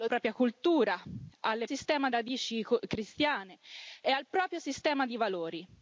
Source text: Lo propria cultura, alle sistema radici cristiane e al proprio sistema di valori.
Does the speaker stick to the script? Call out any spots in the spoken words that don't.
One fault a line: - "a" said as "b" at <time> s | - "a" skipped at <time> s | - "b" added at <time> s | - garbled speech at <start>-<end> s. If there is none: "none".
none